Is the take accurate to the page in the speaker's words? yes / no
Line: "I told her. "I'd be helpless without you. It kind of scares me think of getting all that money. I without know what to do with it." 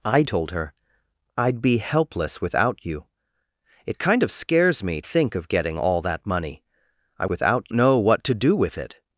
yes